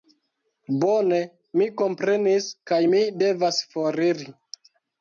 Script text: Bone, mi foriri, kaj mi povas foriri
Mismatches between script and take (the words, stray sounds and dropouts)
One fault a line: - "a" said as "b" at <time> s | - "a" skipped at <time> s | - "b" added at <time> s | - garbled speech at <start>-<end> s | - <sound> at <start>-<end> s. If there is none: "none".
- "foriri" said as "komprenis" at 1.8 s
- "povas" said as "devas" at 3.3 s